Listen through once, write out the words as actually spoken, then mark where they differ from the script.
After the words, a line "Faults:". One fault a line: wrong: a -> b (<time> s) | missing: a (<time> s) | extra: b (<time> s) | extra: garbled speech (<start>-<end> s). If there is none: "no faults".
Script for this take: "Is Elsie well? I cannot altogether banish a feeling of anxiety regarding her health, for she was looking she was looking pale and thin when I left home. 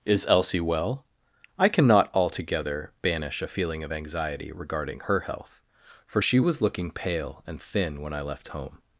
"Is Elsie well? I cannot altogether banish a feeling of anxiety regarding her health, for she was looking pale and thin when I left home.
Faults:
missing: she was looking (6.9 s)